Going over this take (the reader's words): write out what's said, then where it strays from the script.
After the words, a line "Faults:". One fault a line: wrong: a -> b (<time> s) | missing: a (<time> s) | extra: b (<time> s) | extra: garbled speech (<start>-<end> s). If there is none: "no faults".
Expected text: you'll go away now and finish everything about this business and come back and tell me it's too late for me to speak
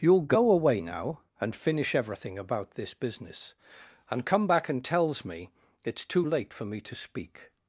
you'll go away now and finish everything about this business and come back and tells me it's too late for me to speak
Faults:
wrong: tell -> tells (4.8 s)